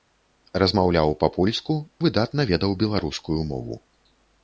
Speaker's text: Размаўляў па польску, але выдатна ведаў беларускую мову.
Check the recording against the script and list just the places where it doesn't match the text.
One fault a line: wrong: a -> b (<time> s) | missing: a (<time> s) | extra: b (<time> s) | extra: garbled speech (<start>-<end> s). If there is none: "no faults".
missing: але (1.8 s)